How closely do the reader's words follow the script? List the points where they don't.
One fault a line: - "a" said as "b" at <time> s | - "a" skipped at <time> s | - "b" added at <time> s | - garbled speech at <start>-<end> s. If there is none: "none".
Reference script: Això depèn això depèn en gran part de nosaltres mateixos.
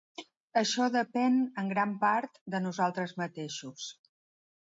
- "això depèn" skipped at 1.4 s